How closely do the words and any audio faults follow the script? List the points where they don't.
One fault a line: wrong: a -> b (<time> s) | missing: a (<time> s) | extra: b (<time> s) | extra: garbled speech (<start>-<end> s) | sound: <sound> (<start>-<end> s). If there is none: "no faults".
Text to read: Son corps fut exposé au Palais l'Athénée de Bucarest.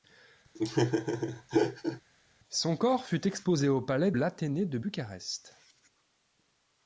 sound: laugh (0.5-2.0 s)